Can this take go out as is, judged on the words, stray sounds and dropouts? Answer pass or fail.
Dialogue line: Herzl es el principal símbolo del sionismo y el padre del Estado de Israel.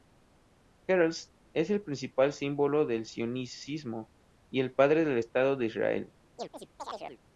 fail